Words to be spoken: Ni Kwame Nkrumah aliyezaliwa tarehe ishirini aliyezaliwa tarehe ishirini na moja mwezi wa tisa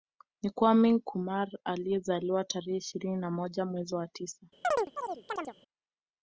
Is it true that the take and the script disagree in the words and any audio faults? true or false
true